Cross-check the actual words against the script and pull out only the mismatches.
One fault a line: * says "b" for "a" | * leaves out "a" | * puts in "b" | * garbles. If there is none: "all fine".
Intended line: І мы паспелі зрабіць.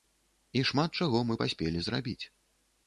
* puts in "шмат чаго"